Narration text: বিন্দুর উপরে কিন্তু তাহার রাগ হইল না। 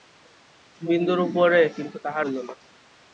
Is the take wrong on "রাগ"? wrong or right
wrong